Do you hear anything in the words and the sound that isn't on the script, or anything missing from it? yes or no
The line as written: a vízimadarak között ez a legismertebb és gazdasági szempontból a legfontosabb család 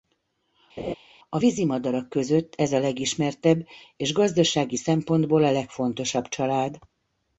yes